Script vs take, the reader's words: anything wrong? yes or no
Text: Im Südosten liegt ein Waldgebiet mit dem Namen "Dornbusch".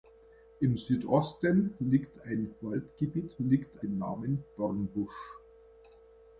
yes